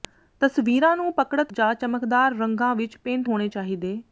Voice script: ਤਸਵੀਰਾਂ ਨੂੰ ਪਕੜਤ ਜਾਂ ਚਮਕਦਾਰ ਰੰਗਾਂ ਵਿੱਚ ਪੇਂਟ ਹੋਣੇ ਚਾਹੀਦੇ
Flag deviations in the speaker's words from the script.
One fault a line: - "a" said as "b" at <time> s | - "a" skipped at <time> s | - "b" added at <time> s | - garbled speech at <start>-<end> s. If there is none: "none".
none